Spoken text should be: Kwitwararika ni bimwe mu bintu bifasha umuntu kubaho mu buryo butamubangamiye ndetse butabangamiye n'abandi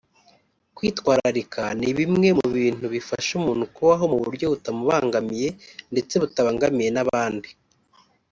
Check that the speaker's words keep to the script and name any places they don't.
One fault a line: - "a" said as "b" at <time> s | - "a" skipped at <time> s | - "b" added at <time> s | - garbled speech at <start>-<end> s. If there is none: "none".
none